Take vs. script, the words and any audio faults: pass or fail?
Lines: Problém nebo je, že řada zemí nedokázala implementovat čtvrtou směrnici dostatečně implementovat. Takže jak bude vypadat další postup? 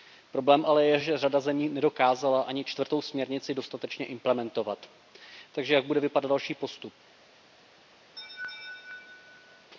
fail